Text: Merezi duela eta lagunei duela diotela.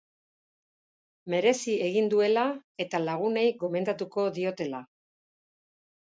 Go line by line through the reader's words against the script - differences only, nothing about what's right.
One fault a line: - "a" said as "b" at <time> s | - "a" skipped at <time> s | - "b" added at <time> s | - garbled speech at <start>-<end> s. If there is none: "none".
- "egin" added at 1.9 s
- "duela" said as "gomendatuko" at 3.6 s